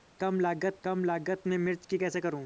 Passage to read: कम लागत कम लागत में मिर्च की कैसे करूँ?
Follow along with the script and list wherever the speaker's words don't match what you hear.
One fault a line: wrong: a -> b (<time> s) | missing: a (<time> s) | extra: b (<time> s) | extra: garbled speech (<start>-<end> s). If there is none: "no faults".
no faults